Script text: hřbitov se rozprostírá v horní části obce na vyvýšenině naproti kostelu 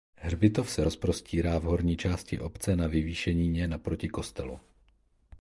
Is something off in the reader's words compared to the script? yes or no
no